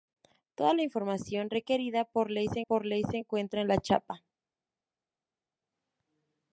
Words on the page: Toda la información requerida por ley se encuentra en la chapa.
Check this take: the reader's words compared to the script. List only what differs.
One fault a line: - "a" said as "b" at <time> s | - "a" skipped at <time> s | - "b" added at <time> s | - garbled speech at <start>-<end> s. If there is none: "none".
- "por ley se" added at 2.6 s